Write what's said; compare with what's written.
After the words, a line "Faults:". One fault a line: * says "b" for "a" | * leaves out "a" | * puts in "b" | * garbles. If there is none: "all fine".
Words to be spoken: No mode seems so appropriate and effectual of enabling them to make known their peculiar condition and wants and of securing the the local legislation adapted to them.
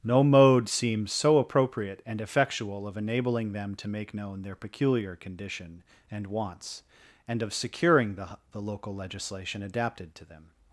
No mode seems so appropriate and effectual of enabling them to make known their peculiar condition and wants and of securing the the local legislation adapted to them.
Faults:
all fine